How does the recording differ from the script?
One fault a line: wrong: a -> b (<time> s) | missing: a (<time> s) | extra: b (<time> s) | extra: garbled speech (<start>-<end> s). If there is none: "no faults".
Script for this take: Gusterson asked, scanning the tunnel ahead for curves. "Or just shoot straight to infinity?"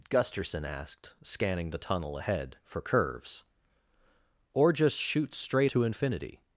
no faults